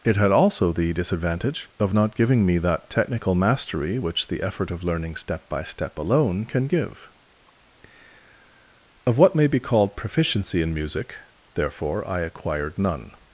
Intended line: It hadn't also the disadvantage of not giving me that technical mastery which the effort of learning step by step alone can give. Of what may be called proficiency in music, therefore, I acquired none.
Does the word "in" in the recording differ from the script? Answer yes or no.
no